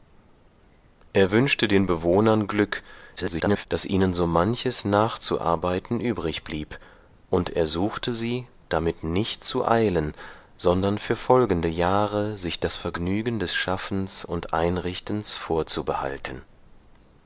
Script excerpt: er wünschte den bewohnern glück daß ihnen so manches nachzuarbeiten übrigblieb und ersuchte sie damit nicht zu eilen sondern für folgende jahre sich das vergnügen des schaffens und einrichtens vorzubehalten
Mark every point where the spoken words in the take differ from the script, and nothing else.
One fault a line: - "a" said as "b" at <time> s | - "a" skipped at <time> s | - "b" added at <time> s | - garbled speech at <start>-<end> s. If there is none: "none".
- garbled speech at 3.2-3.7 s